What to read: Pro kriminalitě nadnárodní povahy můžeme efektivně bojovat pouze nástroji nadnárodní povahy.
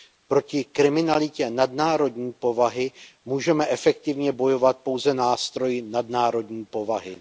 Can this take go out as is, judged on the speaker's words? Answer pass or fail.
fail